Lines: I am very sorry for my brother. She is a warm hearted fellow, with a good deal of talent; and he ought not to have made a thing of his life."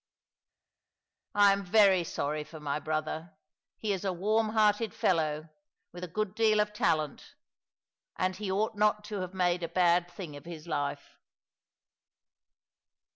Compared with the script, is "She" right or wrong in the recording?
wrong